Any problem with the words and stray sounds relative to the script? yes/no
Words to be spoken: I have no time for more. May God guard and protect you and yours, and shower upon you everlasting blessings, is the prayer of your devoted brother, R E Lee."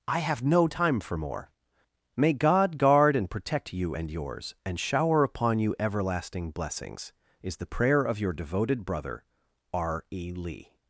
no